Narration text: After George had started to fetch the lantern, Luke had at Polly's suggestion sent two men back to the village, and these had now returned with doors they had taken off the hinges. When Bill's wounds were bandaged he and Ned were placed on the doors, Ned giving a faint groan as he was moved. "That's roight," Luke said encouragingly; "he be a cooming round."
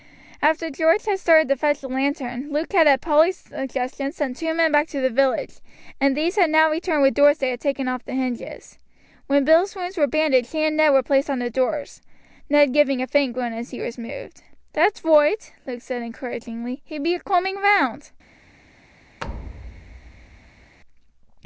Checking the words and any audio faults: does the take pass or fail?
fail